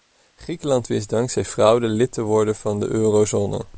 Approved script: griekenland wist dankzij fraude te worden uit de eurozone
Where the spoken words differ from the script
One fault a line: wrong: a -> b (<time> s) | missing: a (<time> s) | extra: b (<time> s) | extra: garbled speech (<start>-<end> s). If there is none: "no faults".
extra: lid (1.9 s)
wrong: uit -> van (2.5 s)